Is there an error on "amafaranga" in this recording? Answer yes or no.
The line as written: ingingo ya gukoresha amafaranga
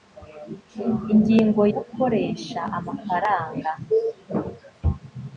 no